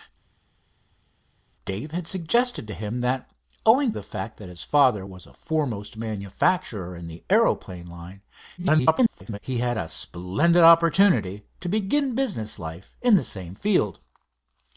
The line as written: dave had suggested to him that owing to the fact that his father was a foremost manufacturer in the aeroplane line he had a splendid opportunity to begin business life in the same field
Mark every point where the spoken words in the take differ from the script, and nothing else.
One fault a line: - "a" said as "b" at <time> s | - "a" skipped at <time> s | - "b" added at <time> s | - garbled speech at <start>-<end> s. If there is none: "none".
- "to" skipped at 3.9 s
- garbled speech at 8.6-9.4 s